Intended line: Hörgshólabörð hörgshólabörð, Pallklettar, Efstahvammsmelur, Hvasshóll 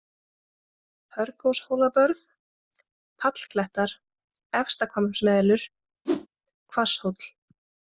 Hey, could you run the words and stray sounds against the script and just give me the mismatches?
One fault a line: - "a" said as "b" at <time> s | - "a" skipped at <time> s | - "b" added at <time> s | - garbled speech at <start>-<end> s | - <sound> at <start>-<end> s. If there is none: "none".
- "hörgshólabörð" skipped at 2.2 s
- whoosh at 6.0-6.3 s